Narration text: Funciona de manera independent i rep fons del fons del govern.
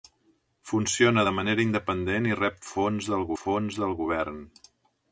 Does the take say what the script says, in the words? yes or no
yes